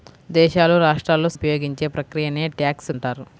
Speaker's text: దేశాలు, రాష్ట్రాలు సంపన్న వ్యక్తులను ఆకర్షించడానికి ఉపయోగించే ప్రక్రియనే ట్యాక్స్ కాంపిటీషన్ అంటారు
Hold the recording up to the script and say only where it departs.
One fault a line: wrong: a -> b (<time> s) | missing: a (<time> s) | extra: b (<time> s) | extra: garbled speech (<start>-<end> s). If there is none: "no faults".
missing: సంపన్న వ్యక్తులను ఆకర్షించడానికి (1.3 s)
missing: కాంపిటీషన్ (2.9 s)